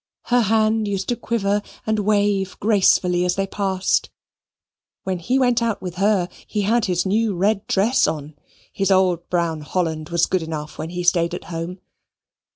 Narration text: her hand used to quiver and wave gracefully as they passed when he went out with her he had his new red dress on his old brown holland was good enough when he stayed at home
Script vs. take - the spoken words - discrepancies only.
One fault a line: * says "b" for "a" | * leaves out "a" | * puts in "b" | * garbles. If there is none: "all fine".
all fine